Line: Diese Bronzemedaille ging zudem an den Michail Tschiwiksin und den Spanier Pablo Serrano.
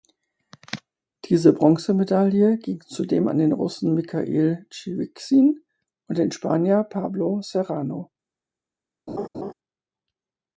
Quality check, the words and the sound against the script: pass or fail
fail